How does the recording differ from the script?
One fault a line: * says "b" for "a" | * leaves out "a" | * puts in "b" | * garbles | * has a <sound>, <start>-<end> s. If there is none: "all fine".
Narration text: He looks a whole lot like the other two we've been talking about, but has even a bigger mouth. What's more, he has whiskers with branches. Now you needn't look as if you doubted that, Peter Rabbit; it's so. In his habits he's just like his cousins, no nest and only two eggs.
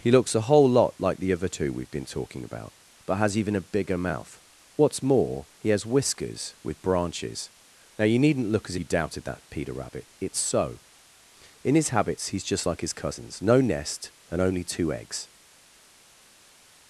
* leaves out "if"